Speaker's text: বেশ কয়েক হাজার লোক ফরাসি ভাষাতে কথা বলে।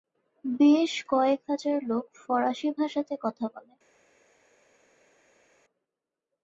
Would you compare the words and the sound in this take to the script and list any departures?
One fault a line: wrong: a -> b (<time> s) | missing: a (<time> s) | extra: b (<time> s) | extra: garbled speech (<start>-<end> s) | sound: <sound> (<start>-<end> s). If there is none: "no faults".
no faults